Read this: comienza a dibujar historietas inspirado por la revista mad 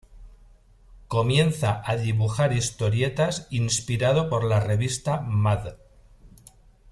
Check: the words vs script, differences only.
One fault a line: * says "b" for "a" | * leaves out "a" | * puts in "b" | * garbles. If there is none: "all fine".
all fine